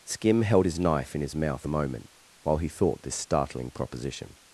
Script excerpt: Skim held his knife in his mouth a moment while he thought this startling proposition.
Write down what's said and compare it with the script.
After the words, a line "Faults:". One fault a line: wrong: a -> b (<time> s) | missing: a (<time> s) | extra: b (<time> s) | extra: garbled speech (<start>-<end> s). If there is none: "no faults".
Skim held his knife in his mouth a moment while he thought this startling proposition.
Faults:
no faults